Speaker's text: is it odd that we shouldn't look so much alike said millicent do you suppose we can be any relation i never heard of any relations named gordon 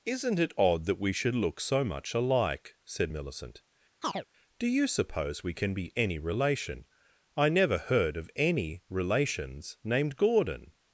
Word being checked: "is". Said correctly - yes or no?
no